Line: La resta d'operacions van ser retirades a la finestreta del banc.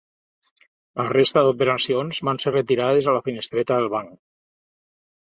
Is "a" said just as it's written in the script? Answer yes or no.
yes